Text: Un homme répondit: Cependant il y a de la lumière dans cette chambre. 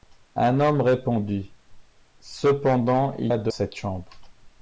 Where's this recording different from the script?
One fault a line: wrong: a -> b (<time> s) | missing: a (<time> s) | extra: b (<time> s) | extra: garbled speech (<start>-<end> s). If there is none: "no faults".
missing: y (3.3 s)
missing: la lumière dans (3.5 s)